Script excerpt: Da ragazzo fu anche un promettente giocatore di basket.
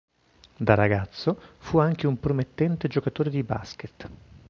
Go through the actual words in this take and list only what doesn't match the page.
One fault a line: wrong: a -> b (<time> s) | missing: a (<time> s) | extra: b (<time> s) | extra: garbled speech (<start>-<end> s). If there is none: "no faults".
no faults